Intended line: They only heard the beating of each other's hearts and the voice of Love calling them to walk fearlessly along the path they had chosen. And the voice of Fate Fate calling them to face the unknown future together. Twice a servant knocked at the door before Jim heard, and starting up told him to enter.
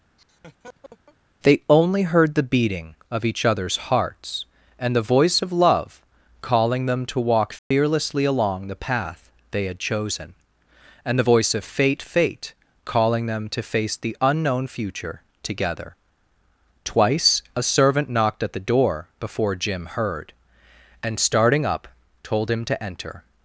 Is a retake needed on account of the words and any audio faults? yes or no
yes